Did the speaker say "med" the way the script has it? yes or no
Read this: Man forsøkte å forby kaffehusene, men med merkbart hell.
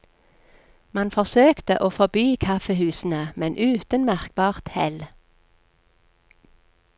no